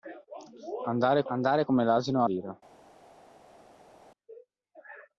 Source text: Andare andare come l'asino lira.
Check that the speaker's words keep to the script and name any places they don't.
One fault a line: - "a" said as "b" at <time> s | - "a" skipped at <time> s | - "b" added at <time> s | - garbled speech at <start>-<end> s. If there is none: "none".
none